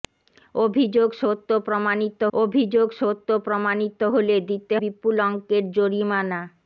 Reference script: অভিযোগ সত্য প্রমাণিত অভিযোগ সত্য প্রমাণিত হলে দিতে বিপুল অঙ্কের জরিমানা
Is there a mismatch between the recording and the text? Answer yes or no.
no